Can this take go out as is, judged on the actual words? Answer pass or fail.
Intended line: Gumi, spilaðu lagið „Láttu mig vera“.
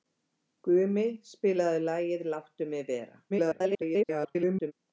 fail